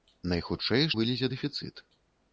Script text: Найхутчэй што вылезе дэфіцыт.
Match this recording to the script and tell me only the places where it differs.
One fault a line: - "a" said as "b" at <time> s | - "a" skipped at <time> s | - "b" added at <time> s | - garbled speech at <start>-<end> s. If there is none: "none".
- "што" skipped at 0.9 s